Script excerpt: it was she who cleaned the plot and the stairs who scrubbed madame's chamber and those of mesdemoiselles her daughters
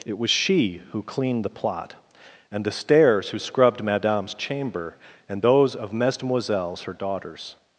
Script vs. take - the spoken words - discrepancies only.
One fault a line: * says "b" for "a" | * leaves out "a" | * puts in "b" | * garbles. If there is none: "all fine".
all fine